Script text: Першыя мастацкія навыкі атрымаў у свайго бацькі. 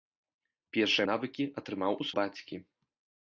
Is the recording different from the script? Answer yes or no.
yes